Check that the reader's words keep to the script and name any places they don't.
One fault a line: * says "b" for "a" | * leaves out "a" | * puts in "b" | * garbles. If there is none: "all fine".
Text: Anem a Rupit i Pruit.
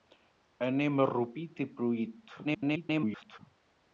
* garbles